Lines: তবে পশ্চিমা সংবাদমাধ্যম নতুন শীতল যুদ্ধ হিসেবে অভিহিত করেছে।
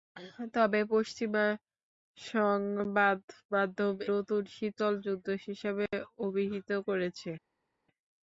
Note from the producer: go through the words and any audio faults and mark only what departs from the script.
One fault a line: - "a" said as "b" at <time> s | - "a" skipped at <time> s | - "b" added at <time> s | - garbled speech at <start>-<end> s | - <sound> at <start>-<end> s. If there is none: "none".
none